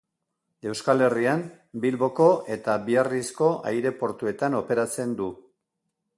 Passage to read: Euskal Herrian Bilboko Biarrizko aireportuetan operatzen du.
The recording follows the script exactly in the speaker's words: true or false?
false